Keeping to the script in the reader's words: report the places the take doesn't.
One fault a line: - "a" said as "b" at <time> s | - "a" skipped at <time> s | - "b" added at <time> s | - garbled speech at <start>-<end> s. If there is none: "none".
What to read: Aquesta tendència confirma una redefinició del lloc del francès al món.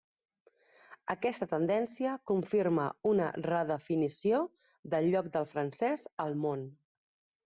none